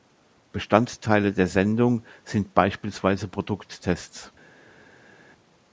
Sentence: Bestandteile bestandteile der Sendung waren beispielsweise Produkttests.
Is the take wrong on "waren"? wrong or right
wrong